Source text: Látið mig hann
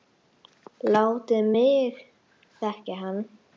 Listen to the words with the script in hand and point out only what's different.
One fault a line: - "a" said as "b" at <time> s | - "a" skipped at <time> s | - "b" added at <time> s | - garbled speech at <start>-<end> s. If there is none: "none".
- "þekkja" added at 2.6 s